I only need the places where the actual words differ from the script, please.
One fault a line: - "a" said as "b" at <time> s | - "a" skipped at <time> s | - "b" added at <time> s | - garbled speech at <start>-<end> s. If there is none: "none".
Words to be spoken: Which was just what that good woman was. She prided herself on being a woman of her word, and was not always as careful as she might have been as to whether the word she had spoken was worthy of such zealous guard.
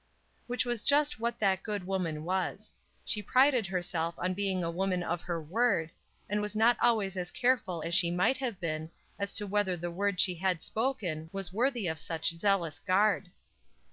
none